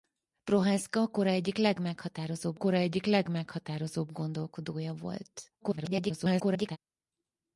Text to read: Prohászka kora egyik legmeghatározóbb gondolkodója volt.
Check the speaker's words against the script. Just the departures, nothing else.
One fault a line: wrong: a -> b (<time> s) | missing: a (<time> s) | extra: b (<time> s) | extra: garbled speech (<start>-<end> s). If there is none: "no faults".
extra: kora egyik legmeghatározóbb (2.5 s)
extra: garbled speech (5.6-6.8 s)